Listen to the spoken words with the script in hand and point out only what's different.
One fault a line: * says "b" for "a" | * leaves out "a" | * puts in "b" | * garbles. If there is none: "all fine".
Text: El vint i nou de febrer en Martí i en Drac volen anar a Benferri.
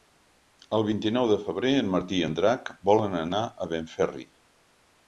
all fine